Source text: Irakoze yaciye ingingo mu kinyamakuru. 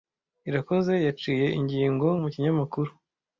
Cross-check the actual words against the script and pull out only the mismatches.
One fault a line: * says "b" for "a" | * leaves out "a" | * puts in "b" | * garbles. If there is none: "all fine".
all fine